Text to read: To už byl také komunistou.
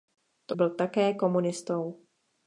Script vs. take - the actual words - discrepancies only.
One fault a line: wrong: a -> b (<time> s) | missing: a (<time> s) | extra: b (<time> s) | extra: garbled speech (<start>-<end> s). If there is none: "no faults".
missing: už (0.6 s)